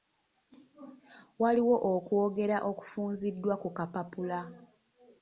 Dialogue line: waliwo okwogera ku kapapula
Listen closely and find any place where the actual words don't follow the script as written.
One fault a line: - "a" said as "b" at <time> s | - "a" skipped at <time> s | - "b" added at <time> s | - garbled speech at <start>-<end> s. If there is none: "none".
- "okufunziddwa" added at 2.7 s